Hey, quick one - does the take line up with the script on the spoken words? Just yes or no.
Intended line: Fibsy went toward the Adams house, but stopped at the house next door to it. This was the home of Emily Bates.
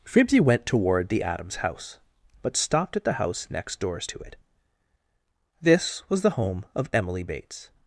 no